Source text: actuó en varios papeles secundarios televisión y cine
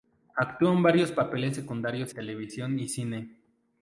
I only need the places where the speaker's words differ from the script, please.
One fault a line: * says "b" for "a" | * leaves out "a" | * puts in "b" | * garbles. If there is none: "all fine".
all fine